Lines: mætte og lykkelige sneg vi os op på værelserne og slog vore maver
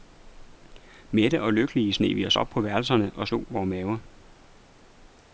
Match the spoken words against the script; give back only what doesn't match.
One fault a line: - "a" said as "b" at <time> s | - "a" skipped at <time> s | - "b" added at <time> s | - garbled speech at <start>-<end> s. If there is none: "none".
none